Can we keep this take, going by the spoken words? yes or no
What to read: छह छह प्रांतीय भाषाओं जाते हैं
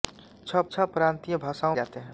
yes